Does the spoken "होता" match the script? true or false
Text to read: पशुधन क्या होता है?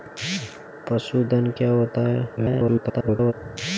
true